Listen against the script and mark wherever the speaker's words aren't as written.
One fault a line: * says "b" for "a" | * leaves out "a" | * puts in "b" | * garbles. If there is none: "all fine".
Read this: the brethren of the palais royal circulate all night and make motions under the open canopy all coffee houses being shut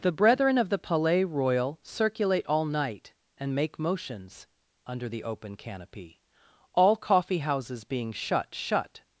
* puts in "shut"